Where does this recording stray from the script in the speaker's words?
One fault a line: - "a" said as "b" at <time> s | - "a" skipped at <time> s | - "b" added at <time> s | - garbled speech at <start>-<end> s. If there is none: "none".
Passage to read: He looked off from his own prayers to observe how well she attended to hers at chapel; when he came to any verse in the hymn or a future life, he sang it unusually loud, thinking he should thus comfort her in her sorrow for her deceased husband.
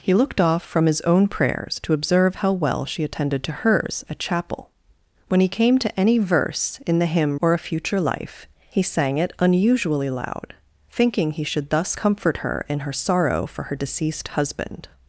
none